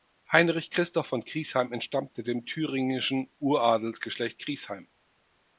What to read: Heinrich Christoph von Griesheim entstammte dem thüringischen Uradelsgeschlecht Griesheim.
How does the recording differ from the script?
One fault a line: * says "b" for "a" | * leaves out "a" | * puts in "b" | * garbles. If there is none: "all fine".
all fine